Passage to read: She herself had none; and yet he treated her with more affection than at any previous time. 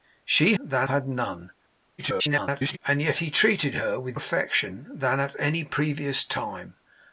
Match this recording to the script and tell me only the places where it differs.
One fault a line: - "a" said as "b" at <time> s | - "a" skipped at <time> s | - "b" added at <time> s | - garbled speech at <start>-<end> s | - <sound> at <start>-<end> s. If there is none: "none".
- "herself" said as "than" at 0.6 s
- garbled speech at 2.0-2.8 s
- "more" skipped at 4.2 s